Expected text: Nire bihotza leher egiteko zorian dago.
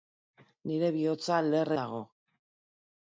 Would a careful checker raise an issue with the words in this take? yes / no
yes